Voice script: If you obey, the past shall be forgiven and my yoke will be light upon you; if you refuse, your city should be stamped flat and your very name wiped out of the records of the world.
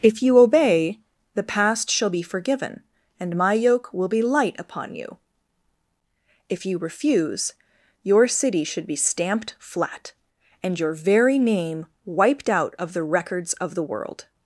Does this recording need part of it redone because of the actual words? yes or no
no